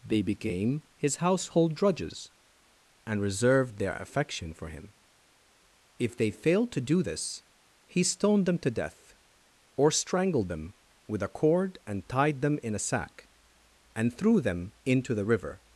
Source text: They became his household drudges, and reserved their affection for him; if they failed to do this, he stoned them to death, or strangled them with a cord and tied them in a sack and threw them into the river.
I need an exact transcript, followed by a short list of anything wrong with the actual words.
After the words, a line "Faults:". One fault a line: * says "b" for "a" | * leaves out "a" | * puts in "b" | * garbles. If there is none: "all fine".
They became his household drudges, and reserved their affection for him; if they failed to do this, he stoned them to death, or strangled them with a cord and tied them in a sack and threw them into the river.
Faults:
all fine